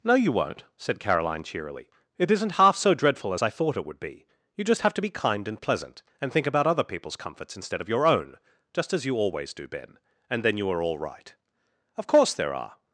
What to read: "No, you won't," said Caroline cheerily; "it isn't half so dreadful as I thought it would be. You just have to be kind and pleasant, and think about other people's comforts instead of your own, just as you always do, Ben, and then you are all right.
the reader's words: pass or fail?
fail